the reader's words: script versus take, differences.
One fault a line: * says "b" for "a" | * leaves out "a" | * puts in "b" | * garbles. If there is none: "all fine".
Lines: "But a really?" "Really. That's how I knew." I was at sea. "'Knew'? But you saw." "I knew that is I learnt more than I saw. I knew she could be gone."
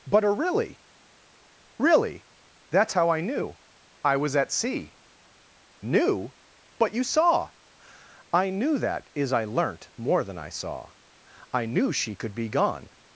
all fine